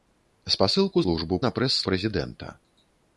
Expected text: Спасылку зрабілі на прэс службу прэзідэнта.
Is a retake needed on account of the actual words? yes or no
yes